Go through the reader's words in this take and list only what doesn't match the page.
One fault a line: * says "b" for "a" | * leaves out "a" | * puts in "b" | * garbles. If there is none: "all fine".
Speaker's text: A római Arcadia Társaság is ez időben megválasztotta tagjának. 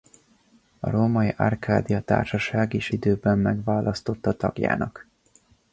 * leaves out "ez"